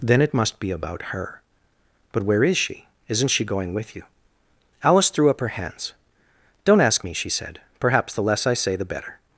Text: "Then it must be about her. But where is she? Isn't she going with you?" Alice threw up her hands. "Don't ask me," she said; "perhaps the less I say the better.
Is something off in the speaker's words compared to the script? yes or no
no